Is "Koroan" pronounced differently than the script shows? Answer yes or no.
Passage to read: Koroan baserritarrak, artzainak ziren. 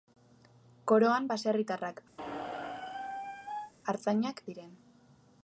no